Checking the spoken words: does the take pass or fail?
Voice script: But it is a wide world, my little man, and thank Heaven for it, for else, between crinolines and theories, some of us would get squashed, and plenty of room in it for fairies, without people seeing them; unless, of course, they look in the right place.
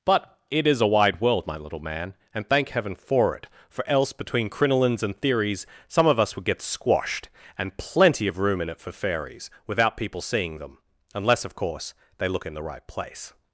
pass